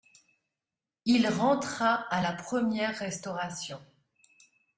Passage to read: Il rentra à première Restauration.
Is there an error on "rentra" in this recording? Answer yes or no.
no